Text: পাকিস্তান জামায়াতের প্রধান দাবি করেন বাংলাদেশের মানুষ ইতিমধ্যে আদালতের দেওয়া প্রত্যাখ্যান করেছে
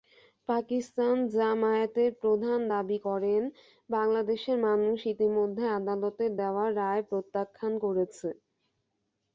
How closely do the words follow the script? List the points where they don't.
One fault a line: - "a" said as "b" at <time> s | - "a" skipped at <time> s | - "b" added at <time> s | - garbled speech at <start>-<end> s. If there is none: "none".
- "রায়" added at 6.8 s